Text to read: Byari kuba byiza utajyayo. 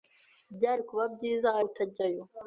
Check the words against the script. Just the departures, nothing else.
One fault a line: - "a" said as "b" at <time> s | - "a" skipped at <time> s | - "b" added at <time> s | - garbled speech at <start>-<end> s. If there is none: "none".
none